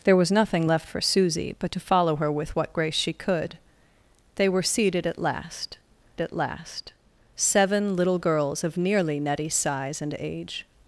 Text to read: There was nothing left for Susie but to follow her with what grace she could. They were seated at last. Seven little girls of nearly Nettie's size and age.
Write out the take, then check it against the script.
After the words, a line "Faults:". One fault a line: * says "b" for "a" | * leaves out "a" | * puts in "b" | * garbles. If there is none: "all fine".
There was nothing left for Susie but to follow her with what grace she could. They were seated at last at last. Seven little girls of nearly Nettie's size and age.
Faults:
* puts in "at last"